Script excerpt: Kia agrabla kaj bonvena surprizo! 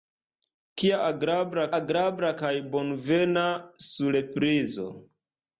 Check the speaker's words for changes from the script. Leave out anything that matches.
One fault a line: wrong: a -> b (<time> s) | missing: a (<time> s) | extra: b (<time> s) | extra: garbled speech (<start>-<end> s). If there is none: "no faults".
extra: agrabla (1.8 s)